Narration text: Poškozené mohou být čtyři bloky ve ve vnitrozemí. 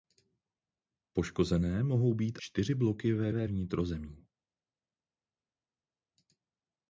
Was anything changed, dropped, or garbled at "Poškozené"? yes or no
no